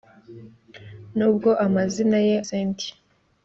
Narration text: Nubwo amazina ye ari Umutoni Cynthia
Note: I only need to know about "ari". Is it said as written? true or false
false